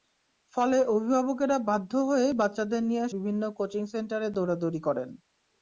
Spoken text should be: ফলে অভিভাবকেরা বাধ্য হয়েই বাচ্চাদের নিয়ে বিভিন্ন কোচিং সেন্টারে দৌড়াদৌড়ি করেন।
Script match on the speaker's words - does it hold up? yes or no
yes